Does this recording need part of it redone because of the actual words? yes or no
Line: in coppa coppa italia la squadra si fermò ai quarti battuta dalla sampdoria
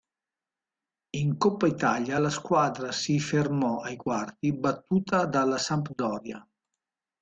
yes